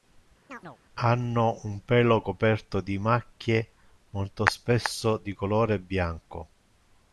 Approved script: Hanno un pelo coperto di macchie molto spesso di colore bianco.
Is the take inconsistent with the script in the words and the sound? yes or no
yes